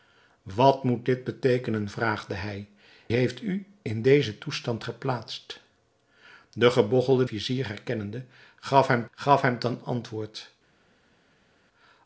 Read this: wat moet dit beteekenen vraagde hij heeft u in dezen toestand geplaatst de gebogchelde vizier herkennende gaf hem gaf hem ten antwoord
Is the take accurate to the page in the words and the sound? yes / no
yes